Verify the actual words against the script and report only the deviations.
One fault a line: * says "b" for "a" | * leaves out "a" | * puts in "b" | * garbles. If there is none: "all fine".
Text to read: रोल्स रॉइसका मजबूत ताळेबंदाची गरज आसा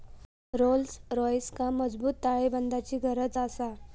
all fine